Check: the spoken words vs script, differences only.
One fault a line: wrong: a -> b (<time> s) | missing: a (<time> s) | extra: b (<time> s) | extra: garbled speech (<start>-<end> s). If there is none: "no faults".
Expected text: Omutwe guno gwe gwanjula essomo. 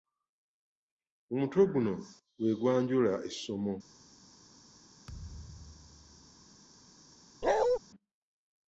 no faults